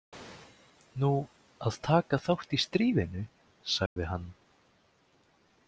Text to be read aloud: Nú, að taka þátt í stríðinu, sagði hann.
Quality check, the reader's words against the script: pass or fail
pass